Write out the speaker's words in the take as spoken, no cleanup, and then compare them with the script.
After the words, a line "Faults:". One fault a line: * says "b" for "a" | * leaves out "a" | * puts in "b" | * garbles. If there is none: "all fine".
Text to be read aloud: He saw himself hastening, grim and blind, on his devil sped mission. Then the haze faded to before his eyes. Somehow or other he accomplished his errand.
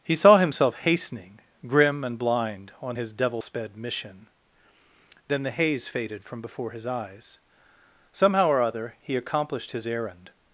He saw himself hastening, grim and blind, on his devil sped mission. Then the haze faded from before his eyes. Somehow or other he accomplished his errand.
Faults:
* says "from" for "to"